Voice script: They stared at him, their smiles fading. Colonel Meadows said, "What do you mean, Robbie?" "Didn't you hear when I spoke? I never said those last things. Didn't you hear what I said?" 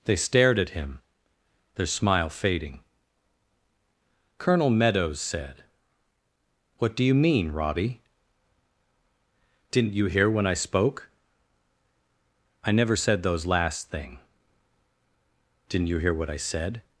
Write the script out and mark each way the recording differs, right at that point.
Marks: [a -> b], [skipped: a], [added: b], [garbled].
They stared at him, their [smiles -> smile] fading. Colonel Meadows said, "What do you mean, Robbie?" "Didn't you hear when I spoke? I never said those last [things. -> thing] Didn't you hear what I said?"